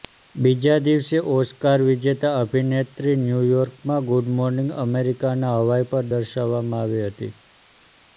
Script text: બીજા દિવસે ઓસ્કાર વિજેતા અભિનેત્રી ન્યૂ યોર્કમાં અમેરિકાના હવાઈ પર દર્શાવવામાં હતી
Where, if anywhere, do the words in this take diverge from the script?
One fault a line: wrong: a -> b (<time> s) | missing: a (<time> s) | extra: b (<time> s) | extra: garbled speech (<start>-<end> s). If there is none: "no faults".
extra: ગુડ મોર્નિંગ (4.1 s)
extra: આવી (6.8 s)